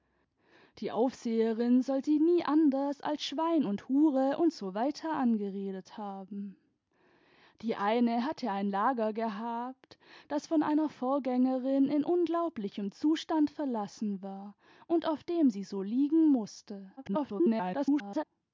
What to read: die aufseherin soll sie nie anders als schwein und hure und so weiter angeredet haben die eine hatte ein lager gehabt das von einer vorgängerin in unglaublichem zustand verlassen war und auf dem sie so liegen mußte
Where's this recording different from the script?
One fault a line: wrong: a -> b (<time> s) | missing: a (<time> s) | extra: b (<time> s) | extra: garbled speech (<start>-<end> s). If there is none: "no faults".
extra: garbled speech (17.0-18.2 s)